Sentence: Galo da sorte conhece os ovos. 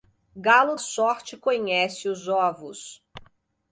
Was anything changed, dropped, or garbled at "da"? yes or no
yes